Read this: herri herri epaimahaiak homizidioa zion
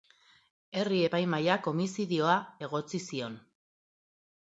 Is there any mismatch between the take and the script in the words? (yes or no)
yes